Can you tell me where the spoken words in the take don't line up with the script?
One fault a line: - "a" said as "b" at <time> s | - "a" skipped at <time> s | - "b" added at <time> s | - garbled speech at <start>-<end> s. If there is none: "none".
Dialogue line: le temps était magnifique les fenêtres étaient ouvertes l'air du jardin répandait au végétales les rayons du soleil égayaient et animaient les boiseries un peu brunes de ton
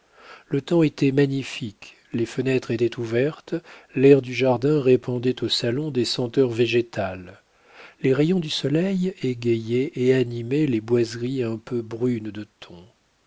- "salon des senteurs" added at 5.5 s